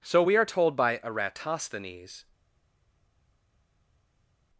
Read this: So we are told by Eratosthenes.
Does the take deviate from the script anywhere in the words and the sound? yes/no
no